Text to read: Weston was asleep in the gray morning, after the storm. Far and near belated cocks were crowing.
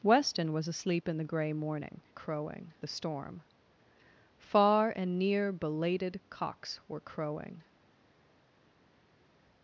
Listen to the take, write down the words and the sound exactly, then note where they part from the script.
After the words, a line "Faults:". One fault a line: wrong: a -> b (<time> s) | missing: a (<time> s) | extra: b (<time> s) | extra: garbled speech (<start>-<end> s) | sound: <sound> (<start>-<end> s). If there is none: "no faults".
Weston was asleep in the gray morning, crowing the storm. Far and near belated cocks were crowing.
Faults:
wrong: after -> crowing (2.1 s)